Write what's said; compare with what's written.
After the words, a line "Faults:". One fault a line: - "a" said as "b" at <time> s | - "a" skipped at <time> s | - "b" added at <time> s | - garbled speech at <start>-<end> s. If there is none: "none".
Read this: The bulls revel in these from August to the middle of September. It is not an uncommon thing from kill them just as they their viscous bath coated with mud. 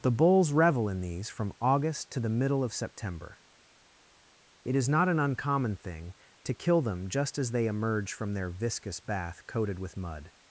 The bulls revel in these from August to the middle of September. It is not an uncommon thing to kill them just as they emerge from their viscous bath coated with mud.
Faults:
- "from" said as "to" at 6.4 s
- "emerge from" added at 7.7 s